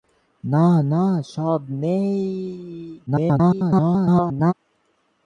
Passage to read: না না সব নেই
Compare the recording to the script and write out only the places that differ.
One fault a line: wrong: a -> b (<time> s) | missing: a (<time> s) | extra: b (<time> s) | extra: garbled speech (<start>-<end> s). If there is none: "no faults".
extra: garbled speech (3.1-4.5 s)